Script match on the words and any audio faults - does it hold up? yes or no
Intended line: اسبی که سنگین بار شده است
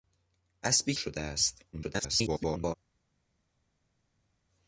no